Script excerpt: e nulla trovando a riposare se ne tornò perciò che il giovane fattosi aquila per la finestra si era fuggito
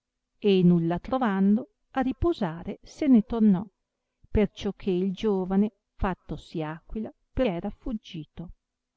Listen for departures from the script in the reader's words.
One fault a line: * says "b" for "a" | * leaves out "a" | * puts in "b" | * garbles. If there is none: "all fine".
* leaves out "la finestra si"